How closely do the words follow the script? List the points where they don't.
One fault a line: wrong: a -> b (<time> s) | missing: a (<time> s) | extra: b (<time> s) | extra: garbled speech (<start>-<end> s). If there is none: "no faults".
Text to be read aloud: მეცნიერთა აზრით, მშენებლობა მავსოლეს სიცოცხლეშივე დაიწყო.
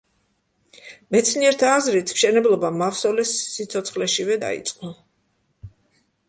no faults